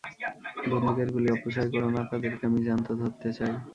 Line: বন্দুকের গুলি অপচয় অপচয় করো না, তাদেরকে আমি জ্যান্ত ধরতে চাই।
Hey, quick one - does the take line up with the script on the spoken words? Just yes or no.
no